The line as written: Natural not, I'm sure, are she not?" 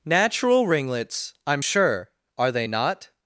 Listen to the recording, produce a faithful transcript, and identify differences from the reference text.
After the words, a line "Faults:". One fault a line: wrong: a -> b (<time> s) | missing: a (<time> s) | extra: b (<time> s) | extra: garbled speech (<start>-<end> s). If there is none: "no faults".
Natural ringlets, I'm sure, are they not?"
Faults:
wrong: not -> ringlets (0.7 s)
wrong: she -> they (2.5 s)